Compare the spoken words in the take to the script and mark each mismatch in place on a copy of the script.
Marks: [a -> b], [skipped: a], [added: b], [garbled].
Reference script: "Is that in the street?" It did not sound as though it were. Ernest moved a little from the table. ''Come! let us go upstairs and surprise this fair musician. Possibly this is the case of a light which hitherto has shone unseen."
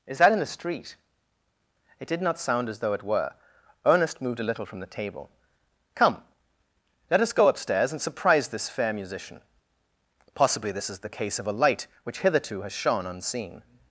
"Is that in the street?" It did not sound as though it were. Ernest moved a little from the table. ''Come! let us go upstairs and surprise this fair musician. Possibly this is the case of a light which hitherto has shone unseen."